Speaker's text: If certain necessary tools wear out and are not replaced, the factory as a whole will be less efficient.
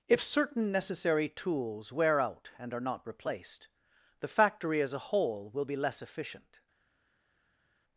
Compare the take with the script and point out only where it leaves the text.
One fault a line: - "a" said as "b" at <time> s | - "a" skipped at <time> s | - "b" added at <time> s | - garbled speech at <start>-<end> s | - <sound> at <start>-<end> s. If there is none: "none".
none